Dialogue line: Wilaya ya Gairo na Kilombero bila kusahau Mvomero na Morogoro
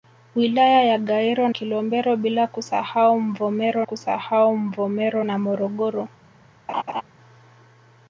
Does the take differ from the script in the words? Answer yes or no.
yes